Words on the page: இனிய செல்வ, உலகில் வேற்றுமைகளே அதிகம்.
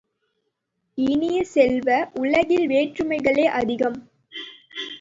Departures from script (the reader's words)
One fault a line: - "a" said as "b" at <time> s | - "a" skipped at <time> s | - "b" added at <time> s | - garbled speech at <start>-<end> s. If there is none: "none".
none